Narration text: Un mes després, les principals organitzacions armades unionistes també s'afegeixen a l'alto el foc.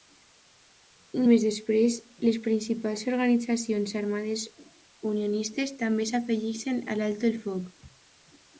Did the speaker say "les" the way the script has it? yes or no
yes